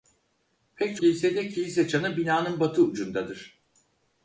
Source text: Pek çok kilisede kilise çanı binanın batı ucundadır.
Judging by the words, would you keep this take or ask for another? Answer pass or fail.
fail